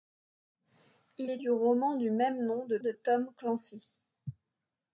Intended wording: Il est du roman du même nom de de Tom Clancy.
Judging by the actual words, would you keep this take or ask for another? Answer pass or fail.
pass